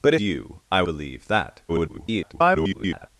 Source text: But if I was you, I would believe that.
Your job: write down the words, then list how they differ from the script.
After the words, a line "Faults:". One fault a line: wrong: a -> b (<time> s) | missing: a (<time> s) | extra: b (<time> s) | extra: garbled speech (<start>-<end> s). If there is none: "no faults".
But you, I believe that. [garbled]
Faults:
missing: if I was (0.1 s)
missing: would (0.8 s)
extra: garbled speech (1.7-3.1 s)